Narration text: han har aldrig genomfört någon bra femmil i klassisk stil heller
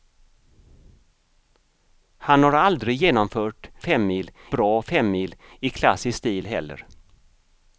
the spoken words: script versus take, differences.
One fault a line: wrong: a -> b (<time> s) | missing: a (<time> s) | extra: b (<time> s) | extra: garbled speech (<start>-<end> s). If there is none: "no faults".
wrong: någon -> femmil (3.8 s)